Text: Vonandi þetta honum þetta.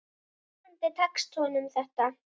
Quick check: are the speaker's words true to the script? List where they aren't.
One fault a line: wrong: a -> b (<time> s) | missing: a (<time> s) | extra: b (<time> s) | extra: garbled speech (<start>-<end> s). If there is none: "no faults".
wrong: þetta -> tekst (1.0 s)